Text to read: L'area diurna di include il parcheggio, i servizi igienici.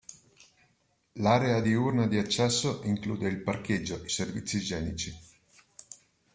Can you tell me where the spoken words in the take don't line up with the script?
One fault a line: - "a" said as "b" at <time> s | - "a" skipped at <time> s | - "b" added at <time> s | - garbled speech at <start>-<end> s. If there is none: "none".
- "accesso" added at 2.2 s